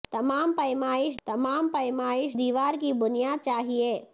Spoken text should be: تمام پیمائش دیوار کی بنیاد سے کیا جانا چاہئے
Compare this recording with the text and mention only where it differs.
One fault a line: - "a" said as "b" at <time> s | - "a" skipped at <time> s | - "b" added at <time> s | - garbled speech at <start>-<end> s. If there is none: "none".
- "تمام پیمائش" added at 1.3 s
- "سے کیا جانا" skipped at 3.5 s